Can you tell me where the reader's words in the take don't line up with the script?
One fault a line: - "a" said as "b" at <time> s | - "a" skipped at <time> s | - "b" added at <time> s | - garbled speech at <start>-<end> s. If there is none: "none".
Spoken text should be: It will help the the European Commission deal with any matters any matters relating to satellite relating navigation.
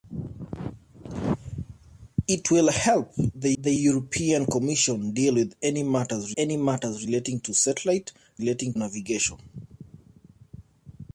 none